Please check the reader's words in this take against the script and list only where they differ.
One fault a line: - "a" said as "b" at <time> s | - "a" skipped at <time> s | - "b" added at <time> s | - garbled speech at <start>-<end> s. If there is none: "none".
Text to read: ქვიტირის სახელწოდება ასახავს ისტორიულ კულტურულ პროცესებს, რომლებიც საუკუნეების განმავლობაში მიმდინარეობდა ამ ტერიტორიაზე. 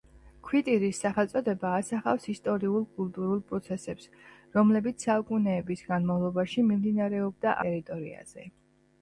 - "ამ" skipped at 7.6 s